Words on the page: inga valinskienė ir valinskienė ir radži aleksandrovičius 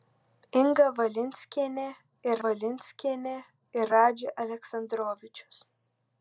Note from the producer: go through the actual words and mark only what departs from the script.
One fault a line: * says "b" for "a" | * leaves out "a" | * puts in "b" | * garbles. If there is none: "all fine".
all fine